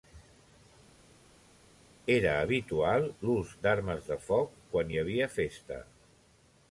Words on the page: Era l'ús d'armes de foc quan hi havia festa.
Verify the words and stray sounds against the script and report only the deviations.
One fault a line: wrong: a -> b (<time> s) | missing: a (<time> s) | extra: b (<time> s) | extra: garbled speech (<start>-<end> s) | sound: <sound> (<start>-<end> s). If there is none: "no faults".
extra: habitual (2.4 s)